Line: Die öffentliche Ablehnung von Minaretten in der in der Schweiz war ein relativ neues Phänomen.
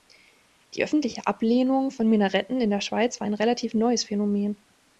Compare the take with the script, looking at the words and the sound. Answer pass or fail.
fail